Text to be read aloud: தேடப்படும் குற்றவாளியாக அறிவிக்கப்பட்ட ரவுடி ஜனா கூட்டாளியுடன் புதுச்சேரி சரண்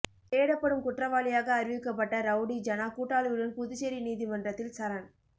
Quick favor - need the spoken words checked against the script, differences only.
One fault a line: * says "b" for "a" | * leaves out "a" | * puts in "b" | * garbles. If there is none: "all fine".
* puts in "நீதிமன்றத்தில்"